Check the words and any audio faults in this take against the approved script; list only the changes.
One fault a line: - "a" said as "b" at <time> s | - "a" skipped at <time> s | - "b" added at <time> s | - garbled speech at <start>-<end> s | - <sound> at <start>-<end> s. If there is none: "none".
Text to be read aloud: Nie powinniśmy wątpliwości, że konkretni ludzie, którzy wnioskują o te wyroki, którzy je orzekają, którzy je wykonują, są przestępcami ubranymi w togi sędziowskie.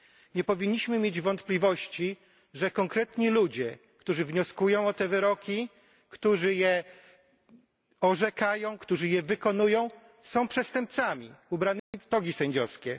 - "mieć" added at 1.0 s
- dropout at 11.8-11.9 s